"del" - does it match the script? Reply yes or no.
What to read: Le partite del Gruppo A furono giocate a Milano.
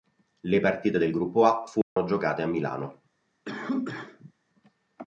yes